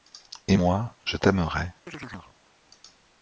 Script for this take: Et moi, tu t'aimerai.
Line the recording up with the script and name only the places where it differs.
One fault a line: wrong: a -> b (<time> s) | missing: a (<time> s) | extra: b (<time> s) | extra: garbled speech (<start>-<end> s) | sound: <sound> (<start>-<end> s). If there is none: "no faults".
wrong: tu -> je (1.0 s)
sound: chirp (1.9-2.4 s)